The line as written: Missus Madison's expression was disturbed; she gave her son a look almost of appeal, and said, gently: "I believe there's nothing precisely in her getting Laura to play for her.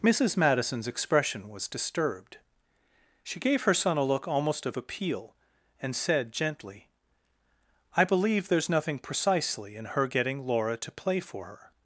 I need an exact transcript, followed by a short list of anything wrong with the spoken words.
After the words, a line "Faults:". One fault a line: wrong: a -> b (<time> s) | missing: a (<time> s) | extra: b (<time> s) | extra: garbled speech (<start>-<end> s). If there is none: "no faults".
Missus Madison's expression was disturbed; she gave her son a look almost of appeal, and said, gently: "I believe there's nothing precisely in her getting Laura to play for her.
Faults:
no faults